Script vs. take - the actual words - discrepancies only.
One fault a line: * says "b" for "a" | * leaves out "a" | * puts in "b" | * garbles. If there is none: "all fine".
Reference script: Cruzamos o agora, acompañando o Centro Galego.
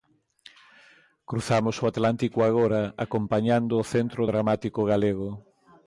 * puts in "atlántico"
* puts in "Dramático"